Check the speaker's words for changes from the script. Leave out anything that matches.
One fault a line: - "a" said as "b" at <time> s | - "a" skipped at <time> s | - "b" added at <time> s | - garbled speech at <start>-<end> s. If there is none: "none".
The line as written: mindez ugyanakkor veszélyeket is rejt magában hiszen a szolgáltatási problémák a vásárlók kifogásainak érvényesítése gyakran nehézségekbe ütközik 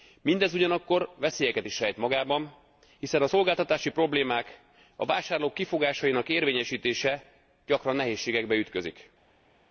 none